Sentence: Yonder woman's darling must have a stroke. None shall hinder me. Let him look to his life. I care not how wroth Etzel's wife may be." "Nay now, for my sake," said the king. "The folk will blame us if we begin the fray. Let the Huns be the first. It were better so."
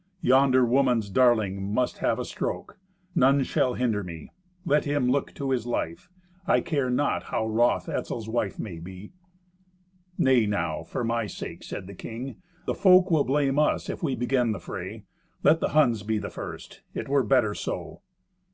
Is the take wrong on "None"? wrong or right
right